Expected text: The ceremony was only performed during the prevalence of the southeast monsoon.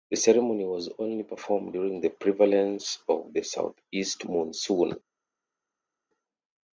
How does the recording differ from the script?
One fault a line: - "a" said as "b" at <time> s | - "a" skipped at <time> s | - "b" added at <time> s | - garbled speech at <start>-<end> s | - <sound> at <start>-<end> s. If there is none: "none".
none